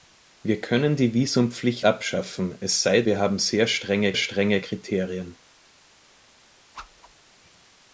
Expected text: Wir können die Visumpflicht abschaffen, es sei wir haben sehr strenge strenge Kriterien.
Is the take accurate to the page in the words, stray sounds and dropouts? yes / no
no